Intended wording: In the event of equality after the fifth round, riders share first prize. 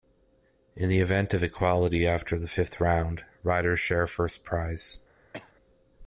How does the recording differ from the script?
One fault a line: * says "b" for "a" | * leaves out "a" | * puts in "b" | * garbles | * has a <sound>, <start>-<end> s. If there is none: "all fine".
* has a cough, 5.3-5.5 s